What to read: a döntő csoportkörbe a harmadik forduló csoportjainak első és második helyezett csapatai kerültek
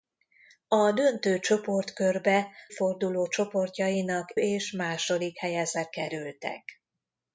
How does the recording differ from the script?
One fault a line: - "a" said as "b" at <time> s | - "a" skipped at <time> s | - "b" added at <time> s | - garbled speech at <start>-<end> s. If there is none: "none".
- "a harmadik" skipped at 2.5 s
- "első" skipped at 4.3 s
- "csapatai" skipped at 5.9 s